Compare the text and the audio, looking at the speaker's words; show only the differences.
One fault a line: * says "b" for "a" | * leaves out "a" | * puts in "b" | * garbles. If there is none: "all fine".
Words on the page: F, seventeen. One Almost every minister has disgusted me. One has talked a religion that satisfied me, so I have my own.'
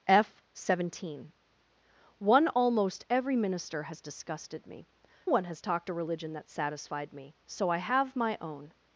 all fine